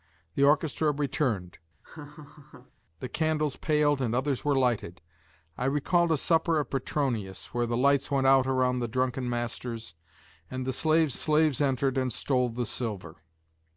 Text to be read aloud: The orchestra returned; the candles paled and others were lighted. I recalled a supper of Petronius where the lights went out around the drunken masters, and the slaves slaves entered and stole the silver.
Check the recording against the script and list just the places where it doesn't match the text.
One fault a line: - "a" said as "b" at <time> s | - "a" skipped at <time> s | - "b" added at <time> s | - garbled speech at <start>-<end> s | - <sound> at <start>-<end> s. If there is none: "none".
- laugh at 1.8-2.7 s